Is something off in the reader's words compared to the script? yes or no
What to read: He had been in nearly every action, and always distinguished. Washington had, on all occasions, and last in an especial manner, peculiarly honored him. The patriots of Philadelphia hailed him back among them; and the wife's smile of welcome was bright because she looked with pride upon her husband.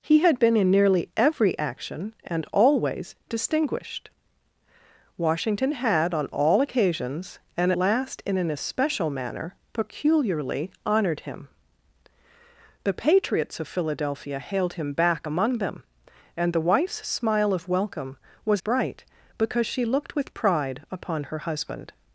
no